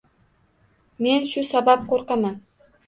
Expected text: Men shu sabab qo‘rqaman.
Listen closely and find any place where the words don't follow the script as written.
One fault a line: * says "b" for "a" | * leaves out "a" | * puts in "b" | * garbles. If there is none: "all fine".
all fine